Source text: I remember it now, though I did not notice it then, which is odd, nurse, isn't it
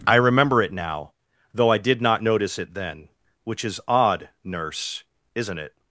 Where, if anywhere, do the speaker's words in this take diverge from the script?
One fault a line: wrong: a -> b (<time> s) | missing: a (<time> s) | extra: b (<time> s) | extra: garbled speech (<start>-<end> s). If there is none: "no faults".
no faults